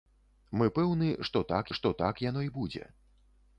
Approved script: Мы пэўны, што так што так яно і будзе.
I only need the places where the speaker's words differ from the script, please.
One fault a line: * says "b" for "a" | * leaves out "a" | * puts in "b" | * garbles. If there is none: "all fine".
all fine